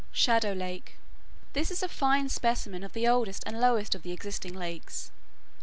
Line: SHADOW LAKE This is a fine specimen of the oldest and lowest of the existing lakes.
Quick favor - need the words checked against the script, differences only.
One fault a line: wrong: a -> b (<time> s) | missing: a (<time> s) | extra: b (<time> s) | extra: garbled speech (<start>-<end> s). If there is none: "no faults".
no faults